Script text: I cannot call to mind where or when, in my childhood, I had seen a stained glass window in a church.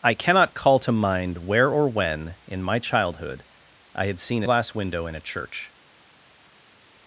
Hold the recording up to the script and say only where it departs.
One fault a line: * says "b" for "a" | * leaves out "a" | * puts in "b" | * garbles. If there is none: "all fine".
* leaves out "stained"